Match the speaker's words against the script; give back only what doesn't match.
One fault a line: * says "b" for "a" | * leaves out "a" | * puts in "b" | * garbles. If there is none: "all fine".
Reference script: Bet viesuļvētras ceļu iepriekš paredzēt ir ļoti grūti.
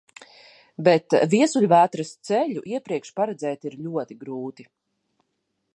all fine